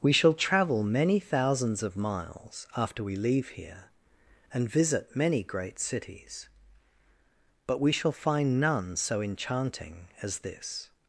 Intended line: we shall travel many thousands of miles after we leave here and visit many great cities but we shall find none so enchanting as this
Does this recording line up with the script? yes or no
yes